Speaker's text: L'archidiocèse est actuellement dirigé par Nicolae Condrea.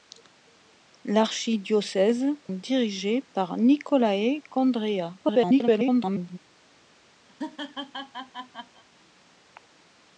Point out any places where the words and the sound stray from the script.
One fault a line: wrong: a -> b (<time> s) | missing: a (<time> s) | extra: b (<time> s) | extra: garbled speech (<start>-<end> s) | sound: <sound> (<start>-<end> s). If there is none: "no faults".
missing: est actuellement (2.2 s)
extra: garbled speech (5.2-6.4 s)
sound: laugh (7.3-8.8 s)